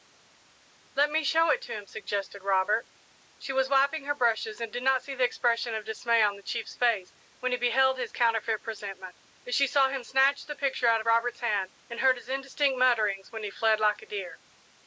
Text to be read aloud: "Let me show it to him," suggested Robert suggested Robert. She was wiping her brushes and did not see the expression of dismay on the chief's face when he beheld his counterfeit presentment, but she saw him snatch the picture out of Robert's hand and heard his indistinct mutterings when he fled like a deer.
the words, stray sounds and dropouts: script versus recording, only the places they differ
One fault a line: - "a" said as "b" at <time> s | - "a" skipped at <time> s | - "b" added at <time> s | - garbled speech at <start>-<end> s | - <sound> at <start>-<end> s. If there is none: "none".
- "suggested Robert" skipped at 2.9 s